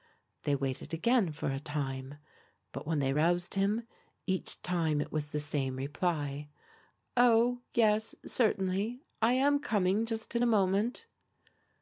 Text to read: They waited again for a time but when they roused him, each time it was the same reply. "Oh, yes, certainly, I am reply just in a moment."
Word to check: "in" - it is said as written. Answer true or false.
true